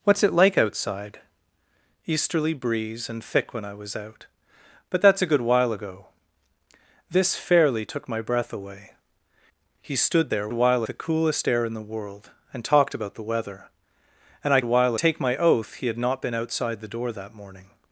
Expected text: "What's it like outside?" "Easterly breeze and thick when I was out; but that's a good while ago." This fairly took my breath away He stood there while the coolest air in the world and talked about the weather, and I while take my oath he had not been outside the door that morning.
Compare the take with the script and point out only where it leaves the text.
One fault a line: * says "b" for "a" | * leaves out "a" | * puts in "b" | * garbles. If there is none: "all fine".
all fine